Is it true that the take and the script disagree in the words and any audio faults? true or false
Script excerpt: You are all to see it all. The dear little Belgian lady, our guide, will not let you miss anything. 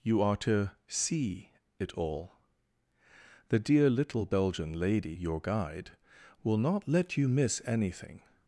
true